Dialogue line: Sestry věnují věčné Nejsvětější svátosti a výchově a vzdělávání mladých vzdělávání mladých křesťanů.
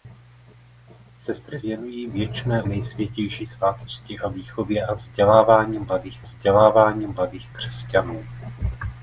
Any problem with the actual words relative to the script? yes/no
no